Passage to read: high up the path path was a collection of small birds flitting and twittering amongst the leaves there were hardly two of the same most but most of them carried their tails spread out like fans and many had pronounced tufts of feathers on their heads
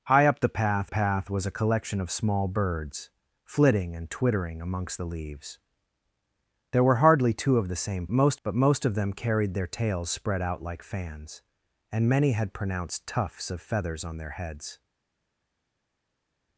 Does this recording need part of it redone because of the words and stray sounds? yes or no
no